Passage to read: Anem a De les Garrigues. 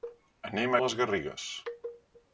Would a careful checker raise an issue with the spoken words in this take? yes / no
no